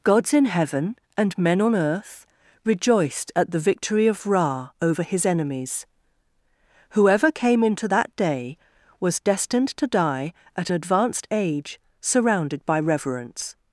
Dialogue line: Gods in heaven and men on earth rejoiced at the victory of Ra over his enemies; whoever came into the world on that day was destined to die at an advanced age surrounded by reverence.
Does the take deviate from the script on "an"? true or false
true